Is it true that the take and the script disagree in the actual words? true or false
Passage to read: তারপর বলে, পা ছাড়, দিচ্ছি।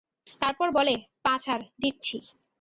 false